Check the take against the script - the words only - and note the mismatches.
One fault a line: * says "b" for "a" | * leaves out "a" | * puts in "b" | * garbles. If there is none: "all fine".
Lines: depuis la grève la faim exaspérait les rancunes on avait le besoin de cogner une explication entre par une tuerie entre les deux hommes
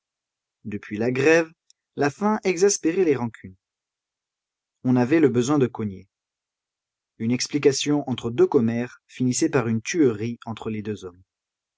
* puts in "deux commères finissait"